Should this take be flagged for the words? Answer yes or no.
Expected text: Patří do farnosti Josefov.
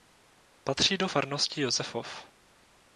no